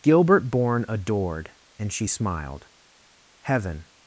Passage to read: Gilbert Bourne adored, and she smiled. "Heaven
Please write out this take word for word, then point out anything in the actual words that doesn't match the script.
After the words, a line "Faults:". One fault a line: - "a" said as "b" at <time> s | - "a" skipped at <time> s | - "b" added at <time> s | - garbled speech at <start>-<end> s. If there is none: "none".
Gilbert Bourne adored, and she smiled. "Heaven
Faults:
none